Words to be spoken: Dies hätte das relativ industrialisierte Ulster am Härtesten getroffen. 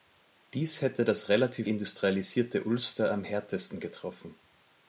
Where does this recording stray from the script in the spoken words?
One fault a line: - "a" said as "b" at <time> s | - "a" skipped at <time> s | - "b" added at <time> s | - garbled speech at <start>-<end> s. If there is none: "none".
none